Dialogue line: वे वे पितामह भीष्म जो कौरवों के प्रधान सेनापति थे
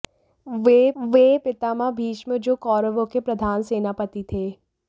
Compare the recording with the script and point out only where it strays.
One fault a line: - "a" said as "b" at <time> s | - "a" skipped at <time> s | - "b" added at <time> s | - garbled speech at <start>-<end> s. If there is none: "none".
none